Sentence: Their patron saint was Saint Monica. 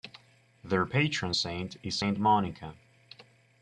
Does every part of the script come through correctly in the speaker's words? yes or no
no